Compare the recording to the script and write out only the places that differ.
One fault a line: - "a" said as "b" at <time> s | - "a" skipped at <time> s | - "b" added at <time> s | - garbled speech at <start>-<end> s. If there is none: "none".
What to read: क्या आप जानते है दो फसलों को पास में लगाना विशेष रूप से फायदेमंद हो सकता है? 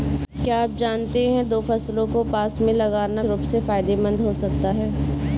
- "विशेष" skipped at 3.2 s